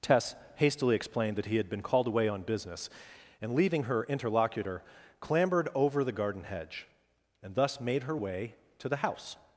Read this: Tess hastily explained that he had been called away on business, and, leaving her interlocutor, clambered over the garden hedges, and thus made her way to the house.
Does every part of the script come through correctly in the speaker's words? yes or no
no